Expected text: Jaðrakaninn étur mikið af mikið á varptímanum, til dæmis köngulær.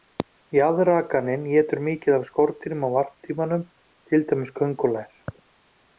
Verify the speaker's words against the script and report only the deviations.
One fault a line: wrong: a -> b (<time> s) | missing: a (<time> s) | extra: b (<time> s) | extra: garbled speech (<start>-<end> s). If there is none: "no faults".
wrong: mikið -> skordýrum (2.3 s)